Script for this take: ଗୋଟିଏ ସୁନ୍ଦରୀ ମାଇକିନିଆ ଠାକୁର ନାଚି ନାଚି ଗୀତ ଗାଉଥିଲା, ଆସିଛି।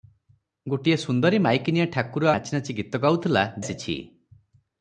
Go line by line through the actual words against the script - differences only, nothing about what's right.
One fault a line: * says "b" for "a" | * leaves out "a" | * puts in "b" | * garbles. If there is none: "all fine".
all fine